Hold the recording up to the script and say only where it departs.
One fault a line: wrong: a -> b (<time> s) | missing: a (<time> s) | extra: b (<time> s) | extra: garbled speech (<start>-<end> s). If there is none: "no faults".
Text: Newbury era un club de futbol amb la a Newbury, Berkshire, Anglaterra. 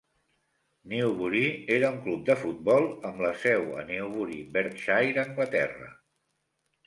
extra: seu (3.4 s)